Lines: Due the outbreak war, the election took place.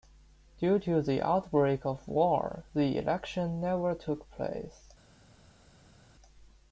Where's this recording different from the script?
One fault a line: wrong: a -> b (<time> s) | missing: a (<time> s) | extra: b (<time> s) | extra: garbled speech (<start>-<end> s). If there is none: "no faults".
extra: to (0.8 s)
extra: of (1.9 s)
extra: never (3.6 s)